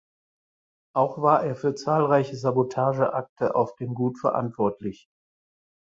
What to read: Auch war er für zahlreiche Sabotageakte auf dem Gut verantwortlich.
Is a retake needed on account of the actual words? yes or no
no